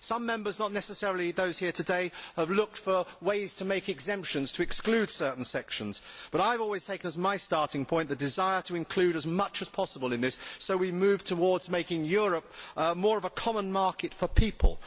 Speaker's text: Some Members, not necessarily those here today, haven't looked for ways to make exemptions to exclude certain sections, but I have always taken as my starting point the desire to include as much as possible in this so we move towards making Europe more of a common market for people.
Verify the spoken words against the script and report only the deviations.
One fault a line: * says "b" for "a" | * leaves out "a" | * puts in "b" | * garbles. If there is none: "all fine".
* says "have" for "haven't"